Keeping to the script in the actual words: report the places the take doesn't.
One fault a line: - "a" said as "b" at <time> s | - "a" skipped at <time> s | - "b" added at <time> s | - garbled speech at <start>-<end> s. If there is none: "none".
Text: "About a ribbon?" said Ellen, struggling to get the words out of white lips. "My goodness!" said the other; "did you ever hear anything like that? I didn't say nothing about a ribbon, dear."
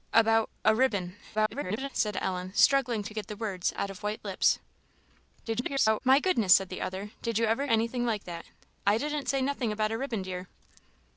- garbled speech at 1.3-1.9 s
- garbled speech at 5.5-6.0 s
- "hear" skipped at 7.6 s